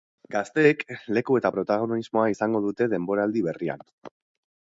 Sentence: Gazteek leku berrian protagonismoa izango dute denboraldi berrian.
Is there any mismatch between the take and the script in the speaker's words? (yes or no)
yes